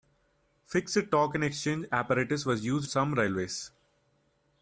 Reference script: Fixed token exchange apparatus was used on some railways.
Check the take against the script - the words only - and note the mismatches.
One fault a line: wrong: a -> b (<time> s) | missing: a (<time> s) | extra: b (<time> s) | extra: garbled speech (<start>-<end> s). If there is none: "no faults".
missing: on (2.9 s)